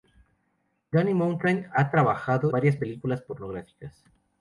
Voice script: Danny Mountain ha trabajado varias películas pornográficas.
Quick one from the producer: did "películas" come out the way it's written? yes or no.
yes